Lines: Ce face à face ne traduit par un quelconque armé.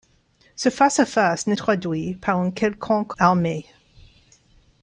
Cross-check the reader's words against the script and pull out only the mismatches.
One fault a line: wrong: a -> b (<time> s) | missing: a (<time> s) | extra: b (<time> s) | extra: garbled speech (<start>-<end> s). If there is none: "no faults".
no faults